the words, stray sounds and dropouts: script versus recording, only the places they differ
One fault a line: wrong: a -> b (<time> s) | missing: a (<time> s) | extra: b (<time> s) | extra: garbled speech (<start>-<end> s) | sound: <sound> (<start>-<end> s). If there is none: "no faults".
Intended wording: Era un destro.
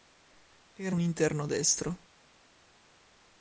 extra: interno (1.0 s)